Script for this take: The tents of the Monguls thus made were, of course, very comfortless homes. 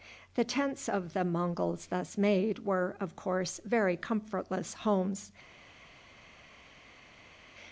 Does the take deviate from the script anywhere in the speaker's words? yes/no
no